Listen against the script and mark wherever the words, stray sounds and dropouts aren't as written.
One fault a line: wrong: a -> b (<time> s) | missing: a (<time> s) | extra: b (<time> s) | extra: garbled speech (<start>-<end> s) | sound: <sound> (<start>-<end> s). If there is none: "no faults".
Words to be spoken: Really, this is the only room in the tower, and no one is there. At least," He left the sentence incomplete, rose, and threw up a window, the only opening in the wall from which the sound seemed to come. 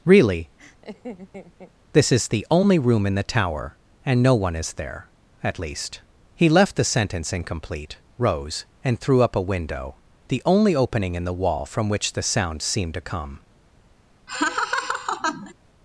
sound: laugh (0.6-1.7 s)
sound: laugh (14.3-15.5 s)